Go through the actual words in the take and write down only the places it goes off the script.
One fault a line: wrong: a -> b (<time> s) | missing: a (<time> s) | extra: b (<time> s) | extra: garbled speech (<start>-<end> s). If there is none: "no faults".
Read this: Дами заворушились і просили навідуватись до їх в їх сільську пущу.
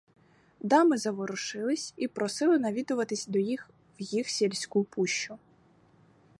no faults